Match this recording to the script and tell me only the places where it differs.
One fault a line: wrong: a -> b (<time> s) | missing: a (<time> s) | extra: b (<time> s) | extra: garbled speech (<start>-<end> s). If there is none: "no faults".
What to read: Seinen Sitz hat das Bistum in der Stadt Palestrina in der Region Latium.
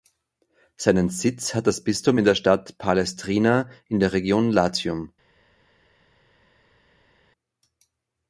no faults